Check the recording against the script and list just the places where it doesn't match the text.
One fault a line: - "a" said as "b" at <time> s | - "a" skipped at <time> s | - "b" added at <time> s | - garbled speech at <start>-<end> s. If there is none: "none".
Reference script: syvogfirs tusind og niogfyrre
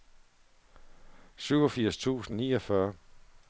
none